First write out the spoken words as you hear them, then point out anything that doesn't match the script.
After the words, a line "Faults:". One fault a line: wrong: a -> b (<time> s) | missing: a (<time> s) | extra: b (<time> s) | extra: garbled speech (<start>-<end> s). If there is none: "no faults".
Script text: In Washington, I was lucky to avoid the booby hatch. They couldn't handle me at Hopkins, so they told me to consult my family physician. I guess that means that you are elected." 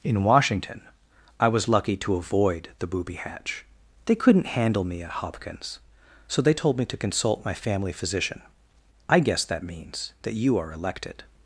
In Washington, I was lucky to avoid the booby hatch. They couldn't handle me at Hopkins, so they told me to consult my family physician. I guess that means that you are elected."
Faults:
no faults